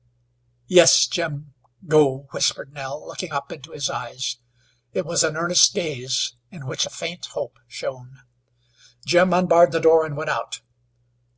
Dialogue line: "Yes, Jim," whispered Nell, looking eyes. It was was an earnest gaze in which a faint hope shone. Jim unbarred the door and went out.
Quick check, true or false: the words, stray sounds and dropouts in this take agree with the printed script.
false